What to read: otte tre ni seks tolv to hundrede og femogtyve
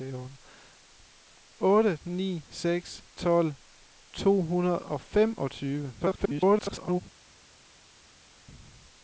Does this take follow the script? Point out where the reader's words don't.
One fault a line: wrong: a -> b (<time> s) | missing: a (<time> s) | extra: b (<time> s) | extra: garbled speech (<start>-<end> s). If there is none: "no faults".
missing: tre (2.0 s)
extra: garbled speech (6.0-7.0 s)